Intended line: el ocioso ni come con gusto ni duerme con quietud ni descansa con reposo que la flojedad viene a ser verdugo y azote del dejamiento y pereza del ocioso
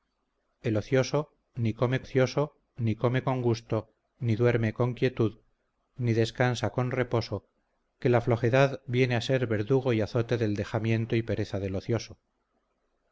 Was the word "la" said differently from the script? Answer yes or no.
no